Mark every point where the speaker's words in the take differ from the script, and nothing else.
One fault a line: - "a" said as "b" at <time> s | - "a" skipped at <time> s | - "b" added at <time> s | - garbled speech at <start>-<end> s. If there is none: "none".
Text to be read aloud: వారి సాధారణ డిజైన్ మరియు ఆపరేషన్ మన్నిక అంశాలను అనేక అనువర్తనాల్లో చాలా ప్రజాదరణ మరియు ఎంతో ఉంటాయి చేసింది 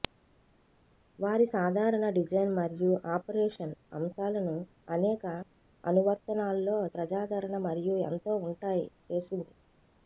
- "మన్నిక" skipped at 3.7 s
- "చాలా" skipped at 6.8 s